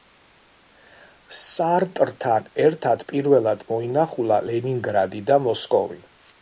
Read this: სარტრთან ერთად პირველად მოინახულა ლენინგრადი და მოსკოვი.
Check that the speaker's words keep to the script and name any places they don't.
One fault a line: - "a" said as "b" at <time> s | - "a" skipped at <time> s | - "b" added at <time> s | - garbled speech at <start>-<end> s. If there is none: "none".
none